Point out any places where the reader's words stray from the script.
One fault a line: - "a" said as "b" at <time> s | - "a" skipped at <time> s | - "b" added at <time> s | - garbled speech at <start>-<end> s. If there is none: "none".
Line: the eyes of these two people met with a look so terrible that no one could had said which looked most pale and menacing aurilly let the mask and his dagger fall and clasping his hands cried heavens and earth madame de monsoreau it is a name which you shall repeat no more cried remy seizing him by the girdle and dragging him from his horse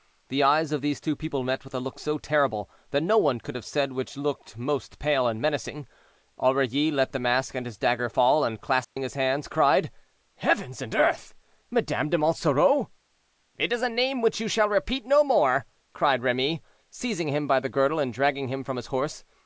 - "had" said as "have" at 3.5 s